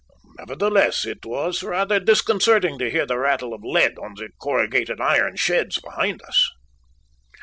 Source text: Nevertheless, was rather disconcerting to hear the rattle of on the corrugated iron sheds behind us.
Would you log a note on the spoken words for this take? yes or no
yes